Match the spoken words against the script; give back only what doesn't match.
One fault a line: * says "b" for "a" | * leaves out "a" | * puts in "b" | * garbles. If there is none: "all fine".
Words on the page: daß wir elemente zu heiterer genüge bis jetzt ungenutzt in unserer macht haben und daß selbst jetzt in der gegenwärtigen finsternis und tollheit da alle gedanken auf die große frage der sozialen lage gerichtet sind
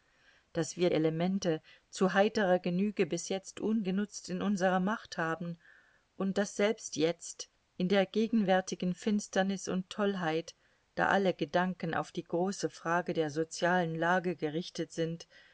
all fine